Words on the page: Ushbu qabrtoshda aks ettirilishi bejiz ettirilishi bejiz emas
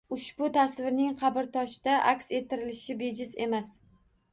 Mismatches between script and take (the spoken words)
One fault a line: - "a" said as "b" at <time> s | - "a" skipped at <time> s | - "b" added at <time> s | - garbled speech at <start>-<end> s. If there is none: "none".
- "tasvirning" added at 0.6 s
- "ettirilishi bejiz" skipped at 3.4 s